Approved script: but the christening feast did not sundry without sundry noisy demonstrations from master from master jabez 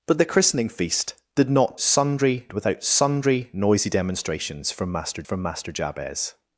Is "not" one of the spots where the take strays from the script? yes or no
no